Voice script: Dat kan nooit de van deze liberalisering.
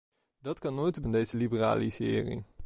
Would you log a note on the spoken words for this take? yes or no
no